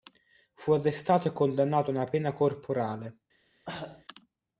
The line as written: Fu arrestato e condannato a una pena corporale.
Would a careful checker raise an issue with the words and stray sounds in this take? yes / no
yes